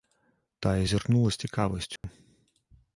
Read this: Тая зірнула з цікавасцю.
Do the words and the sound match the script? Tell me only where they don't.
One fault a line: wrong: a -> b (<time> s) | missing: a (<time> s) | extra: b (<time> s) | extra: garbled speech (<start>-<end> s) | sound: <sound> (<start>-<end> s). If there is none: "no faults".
sound: dropout (2.0-2.0 s)